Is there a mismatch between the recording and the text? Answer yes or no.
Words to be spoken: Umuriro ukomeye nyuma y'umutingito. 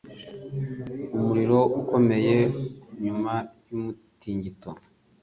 no